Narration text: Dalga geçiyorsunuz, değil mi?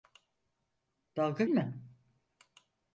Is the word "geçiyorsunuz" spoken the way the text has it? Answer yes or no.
no